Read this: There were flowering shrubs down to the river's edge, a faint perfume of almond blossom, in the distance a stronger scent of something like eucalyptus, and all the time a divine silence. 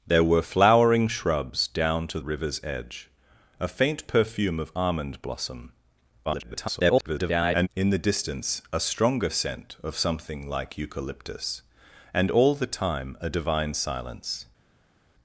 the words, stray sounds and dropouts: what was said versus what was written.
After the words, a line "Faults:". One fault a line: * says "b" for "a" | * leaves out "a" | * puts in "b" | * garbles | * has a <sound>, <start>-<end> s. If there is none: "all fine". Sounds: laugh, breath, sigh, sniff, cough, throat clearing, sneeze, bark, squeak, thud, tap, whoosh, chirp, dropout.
There were flowering shrubs down to river's edge, a faint perfume of almond blossom, [garbled] in the distance a stronger scent of something like eucalyptus, and all the time a divine silence.
Faults:
* leaves out "the"
* garbles